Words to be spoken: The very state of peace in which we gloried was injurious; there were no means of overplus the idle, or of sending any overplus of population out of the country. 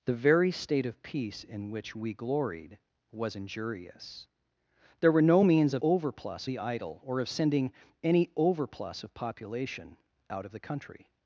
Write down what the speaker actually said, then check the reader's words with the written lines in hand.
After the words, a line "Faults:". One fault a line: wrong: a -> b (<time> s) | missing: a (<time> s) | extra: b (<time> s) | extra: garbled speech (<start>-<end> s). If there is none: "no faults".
The very state of peace in which we gloried was injurious; there were no means of overplus the idle, or of sending any overplus of population out of the country.
Faults:
no faults